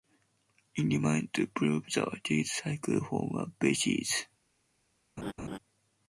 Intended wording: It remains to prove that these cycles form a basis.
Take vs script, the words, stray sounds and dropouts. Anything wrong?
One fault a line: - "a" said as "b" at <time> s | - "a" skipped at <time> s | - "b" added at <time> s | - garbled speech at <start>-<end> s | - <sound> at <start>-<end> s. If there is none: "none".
- laugh at 5.2-5.6 s